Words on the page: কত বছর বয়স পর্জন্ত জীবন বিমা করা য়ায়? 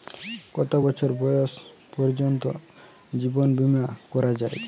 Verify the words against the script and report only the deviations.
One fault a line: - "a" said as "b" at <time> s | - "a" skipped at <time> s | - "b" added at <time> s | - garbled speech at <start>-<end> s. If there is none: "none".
none